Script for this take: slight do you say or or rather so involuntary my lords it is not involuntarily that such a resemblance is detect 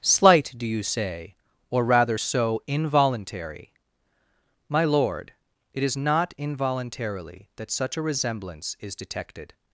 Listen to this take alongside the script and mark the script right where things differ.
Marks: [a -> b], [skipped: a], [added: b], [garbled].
slight do you say or [skipped: or] rather so involuntary my [lords -> lord] it is not involuntarily that such a resemblance is [detect -> detected]